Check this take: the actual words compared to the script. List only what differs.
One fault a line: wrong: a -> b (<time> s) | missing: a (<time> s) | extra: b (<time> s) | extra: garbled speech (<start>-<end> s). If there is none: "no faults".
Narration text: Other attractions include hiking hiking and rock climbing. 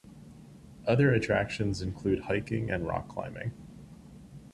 missing: hiking (2.7 s)